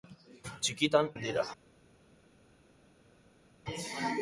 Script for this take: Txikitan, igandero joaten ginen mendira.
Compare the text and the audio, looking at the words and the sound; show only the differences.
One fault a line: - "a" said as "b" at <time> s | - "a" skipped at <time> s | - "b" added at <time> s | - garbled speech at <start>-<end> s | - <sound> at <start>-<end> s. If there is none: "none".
- "igandero joaten ginen" skipped at 1.1 s